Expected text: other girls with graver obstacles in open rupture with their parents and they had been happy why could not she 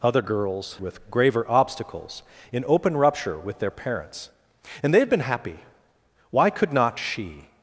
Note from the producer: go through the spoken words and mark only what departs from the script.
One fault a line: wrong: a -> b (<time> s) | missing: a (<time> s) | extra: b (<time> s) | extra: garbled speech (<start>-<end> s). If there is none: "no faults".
no faults